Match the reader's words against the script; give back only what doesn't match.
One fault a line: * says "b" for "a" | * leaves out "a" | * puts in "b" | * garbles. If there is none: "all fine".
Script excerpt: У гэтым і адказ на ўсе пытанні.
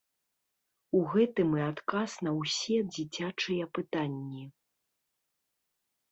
* puts in "дзіцячыя"